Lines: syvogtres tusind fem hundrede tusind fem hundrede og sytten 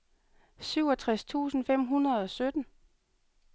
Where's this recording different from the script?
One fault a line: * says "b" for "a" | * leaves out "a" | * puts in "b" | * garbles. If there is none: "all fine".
* leaves out "tusind fem hundrede"